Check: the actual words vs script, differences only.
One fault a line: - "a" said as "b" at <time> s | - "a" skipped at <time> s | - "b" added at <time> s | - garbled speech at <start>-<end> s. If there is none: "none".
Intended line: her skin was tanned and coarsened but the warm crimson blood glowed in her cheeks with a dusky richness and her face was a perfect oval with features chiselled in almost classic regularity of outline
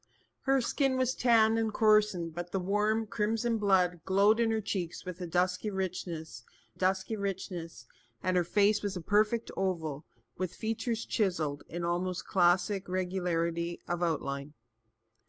- "dusky richness" added at 6.7 s